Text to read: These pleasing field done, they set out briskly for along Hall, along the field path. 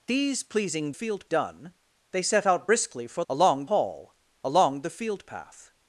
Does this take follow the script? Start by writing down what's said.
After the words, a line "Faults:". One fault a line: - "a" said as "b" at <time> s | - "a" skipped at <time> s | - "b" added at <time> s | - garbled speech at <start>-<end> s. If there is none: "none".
These pleasing field done, they set out briskly for along Hall, along the field path.
Faults:
none